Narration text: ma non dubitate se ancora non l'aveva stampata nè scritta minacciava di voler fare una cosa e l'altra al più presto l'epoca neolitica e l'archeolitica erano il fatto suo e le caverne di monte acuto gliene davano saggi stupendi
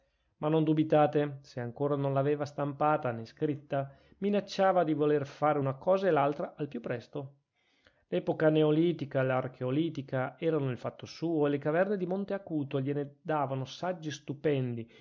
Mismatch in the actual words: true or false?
false